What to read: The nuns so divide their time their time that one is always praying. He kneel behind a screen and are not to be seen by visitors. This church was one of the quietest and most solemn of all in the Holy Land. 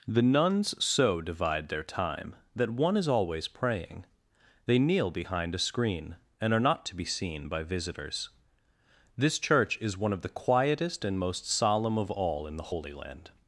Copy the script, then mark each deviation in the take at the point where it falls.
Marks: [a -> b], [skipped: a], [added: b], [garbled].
The nuns so divide their time [skipped: their time] that one is always praying. [He -> They] kneel behind a screen and are not to be seen by visitors. This church [was -> is] one of the quietest and most solemn of all in the Holy Land.